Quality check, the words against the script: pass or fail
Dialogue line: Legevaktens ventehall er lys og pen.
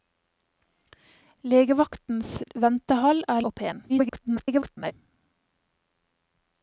fail